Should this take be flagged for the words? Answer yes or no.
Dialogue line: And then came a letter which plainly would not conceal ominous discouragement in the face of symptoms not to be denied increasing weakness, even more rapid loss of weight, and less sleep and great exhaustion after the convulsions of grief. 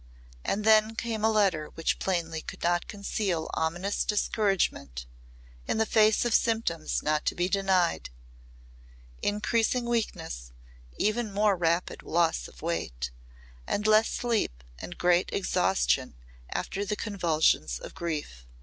yes